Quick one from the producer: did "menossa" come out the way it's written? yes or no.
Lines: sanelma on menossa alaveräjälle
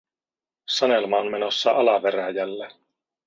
yes